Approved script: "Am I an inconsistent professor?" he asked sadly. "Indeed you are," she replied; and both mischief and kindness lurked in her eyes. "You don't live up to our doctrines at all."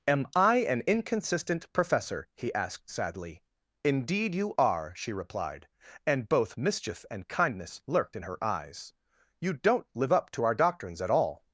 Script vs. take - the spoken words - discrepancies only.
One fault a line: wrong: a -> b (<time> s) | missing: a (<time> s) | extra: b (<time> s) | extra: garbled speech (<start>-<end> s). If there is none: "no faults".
no faults